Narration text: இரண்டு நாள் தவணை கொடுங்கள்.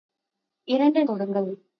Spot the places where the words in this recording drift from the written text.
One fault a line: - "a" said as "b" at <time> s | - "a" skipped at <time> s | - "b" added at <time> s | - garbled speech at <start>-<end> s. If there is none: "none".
- "நாள் தவணை" skipped at 1.1 s